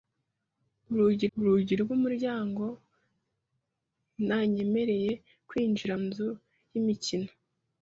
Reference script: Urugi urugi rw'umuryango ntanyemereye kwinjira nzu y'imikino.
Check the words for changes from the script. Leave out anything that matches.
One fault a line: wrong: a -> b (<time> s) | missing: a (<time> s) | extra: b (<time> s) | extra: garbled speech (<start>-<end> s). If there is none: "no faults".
no faults